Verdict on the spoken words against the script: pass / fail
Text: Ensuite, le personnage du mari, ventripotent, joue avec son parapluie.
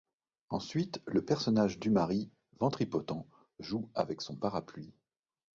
pass